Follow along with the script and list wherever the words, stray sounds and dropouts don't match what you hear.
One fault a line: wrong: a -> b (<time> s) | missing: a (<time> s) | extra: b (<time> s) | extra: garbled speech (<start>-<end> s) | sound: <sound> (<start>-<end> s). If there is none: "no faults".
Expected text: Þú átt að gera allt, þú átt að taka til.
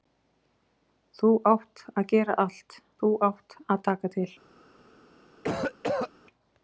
sound: cough (5.4-6.1 s)